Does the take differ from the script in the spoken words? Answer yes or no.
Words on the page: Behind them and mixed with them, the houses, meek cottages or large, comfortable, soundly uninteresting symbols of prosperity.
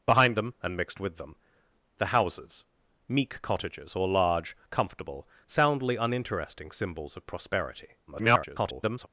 yes